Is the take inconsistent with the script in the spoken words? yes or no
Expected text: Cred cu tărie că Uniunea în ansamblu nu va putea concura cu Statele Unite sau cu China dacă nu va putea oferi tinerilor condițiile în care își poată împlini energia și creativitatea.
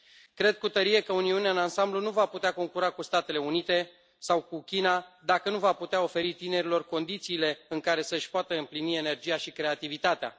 yes